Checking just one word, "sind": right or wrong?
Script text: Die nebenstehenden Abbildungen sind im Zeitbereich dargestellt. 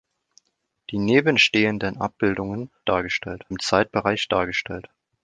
wrong